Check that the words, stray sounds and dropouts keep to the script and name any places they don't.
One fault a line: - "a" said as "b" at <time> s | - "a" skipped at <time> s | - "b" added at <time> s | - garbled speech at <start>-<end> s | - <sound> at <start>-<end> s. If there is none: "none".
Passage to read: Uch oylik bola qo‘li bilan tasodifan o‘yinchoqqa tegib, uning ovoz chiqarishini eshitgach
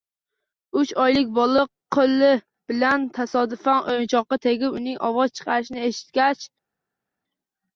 none